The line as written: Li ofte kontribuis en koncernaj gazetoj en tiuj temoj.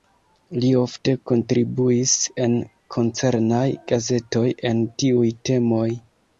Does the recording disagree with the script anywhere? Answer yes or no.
no